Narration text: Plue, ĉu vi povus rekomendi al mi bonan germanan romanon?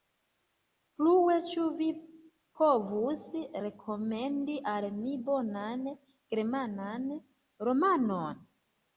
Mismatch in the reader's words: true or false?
false